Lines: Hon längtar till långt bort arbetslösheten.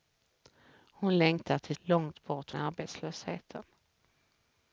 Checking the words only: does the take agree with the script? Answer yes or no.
yes